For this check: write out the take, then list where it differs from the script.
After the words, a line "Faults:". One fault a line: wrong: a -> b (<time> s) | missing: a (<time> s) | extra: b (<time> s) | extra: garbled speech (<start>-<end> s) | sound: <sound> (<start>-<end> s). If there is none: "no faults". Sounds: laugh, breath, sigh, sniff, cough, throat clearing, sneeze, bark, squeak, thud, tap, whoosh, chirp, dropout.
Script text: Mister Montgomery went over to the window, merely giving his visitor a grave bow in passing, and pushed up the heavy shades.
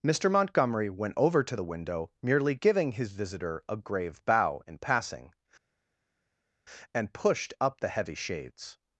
Mister Montgomery went over to the window, merely giving his visitor a grave bow in passing, and pushed up the heavy shades.
Faults:
no faults